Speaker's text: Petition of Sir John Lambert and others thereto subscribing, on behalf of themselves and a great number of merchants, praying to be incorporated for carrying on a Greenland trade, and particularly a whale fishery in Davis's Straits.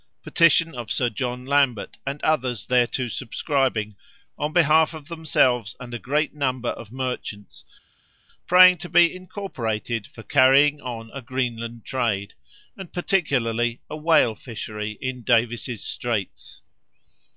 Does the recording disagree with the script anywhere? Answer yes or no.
no